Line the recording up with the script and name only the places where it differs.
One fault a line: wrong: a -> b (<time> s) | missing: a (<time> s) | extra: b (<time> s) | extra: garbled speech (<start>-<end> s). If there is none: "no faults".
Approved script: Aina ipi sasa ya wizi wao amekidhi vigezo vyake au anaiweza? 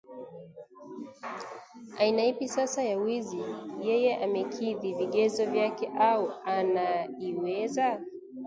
wrong: wao -> yeye (3.9 s)